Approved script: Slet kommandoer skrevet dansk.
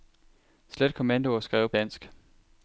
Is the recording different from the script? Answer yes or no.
no